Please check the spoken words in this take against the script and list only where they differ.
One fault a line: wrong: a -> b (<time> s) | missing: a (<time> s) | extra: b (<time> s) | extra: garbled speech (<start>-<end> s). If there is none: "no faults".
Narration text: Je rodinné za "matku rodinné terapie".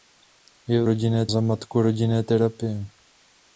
no faults